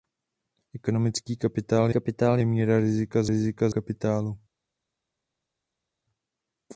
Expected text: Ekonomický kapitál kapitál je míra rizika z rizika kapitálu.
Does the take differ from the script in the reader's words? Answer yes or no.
no